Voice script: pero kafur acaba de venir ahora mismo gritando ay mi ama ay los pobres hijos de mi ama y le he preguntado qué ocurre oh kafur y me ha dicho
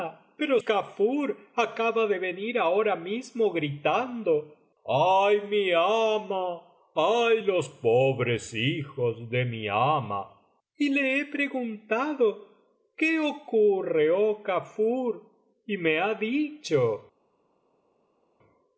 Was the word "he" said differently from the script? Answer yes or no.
no